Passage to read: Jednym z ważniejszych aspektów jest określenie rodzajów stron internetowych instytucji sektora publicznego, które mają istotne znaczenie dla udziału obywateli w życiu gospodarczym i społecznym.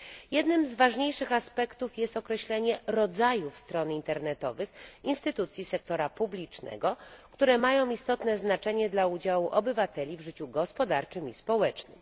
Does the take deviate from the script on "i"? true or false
false